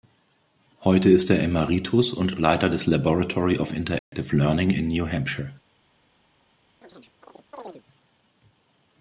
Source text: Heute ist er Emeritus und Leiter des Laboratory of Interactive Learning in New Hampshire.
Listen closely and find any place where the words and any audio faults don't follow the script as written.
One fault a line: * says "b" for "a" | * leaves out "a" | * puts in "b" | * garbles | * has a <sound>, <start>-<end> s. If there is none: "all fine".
* has a dropout, 4.0-4.1 s
* has a chirp, 6.8-7.8 s